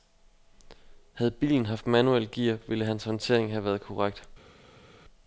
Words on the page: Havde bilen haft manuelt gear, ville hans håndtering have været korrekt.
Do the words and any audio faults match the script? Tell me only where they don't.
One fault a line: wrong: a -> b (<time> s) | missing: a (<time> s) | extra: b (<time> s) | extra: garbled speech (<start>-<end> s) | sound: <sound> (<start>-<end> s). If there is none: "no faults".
no faults